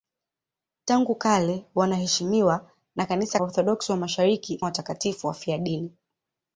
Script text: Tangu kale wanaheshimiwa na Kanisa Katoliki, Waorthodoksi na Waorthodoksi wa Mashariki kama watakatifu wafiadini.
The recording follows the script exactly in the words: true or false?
false